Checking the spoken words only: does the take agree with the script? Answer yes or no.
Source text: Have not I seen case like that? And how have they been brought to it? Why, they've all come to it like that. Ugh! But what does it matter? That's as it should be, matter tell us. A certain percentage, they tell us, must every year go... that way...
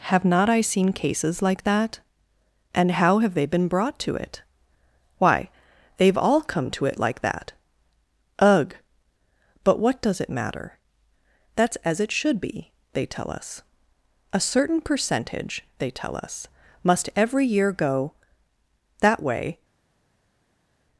no